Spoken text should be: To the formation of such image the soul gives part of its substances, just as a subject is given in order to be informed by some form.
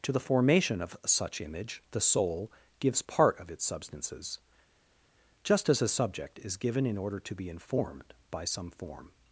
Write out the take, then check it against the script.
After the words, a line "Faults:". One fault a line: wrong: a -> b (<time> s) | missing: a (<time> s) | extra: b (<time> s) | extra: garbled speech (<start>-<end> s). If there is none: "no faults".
To the formation of such image the soul gives part of its substances, just as a subject is given in order to be informed by some form.
Faults:
no faults